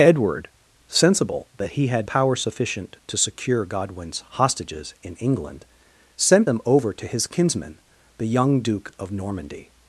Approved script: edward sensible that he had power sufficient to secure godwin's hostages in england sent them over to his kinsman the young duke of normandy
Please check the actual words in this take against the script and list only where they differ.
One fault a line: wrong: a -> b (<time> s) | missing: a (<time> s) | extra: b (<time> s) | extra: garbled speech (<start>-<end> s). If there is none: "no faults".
no faults